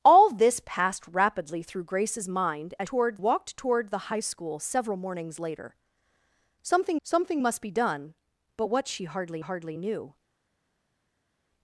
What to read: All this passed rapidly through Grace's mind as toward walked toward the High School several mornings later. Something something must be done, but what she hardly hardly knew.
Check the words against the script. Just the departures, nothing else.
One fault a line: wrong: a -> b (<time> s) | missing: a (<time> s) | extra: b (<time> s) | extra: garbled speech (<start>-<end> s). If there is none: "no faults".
no faults